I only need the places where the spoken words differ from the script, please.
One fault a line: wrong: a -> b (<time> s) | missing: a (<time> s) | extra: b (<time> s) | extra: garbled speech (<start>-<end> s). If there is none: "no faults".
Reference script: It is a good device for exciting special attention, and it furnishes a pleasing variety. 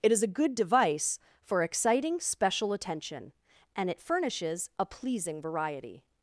no faults